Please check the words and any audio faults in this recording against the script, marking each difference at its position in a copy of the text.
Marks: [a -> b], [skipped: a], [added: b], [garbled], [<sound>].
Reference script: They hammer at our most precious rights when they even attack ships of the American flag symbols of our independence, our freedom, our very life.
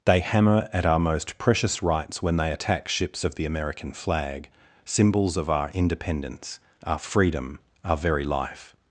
They hammer at our most precious rights when they [skipped: even] attack ships of the American flag symbols of our independence, our freedom, our very life.